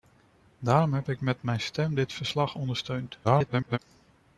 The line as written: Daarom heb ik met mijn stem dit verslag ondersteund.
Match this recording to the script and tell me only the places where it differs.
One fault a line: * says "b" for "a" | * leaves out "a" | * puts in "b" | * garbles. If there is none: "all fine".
* garbles